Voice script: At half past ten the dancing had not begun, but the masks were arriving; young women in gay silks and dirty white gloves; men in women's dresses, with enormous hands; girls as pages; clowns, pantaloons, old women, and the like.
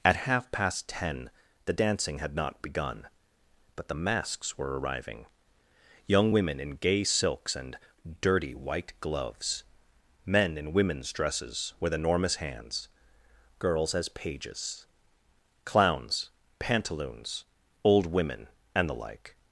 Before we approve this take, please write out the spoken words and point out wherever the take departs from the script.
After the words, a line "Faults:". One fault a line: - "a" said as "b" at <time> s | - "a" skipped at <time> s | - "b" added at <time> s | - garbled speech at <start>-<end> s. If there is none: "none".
At half past ten the dancing had not begun, but the masks were arriving; young women in gay silks and dirty white gloves; men in women's dresses, with enormous hands; girls as pages; clowns, pantaloons, old women, and the like.
Faults:
none